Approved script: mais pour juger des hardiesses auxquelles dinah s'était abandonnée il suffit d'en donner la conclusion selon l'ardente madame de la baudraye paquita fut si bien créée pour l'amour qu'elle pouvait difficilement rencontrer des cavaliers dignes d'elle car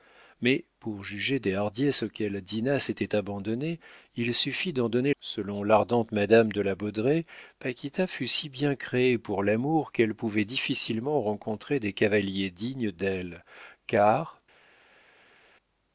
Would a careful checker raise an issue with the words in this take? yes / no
yes